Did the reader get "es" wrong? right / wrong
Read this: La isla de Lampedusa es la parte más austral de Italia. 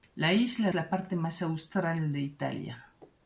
wrong